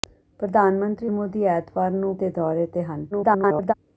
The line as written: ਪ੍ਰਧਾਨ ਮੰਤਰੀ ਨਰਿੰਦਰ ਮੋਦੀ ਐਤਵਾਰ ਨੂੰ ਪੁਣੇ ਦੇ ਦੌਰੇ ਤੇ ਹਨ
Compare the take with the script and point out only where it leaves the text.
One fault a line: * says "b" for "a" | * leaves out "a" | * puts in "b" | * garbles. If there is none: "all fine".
* leaves out "ਨਰਿੰਦਰ"
* leaves out "ਪੁਣੇ"
* garbles